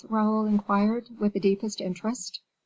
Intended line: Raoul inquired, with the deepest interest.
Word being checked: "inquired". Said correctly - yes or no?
yes